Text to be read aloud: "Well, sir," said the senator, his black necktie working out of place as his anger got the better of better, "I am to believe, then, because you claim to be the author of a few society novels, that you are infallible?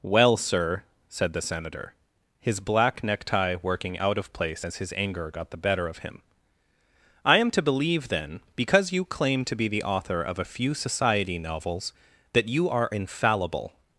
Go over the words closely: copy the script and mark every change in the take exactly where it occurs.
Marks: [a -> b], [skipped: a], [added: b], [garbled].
"Well, sir," said the senator, his black necktie working out of place as his anger got the better of [better, -> him] "I am to believe, then, because you claim to be the author of a few society novels, that you are infallible?